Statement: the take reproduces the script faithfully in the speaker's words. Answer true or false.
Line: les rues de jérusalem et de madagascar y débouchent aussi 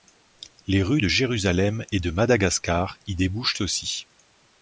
true